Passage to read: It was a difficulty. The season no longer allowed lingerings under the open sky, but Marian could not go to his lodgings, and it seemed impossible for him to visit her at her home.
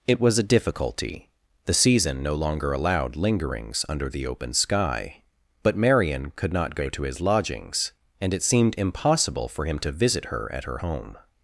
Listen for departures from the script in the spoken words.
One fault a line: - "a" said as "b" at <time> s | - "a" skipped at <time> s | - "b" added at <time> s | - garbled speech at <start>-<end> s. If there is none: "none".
none